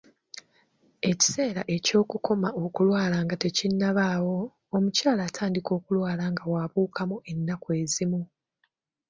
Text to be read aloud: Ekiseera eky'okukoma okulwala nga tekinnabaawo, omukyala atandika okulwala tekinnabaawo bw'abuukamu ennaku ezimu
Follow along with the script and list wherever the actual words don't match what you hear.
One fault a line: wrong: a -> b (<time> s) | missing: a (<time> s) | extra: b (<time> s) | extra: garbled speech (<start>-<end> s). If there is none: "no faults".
wrong: tekinnabaawo -> nga (6.3 s)